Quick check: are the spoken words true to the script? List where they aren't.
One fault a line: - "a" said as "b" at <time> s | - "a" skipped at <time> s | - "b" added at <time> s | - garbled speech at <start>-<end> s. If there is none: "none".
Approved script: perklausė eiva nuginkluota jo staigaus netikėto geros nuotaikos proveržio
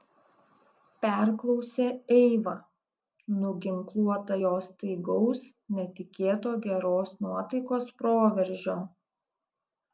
none